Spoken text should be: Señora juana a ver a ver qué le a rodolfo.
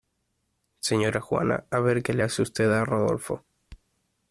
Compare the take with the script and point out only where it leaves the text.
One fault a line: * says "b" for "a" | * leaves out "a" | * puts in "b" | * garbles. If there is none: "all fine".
* says "qué le hace usted" for "a ver qué le"